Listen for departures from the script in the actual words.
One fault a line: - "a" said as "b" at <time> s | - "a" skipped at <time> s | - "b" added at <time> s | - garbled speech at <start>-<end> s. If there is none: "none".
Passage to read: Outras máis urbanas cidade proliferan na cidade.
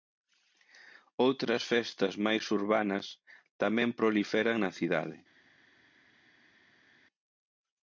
- "festas" added at 1.7 s
- "cidade" said as "tamén" at 3.6 s